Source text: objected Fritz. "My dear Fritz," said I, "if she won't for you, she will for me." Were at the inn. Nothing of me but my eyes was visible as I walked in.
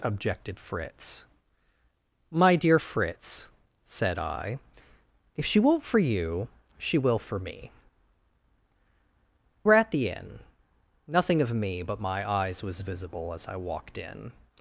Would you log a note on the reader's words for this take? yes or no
no